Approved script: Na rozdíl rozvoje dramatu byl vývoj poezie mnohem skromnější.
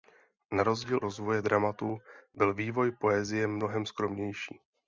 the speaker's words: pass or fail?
pass